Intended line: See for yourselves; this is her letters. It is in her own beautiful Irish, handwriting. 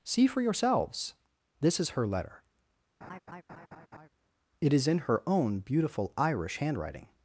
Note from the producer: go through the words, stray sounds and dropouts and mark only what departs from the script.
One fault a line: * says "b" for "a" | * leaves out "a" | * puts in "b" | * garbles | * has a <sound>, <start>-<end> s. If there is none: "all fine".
* says "letter" for "letters"
* has a laugh, 3.0-4.1 s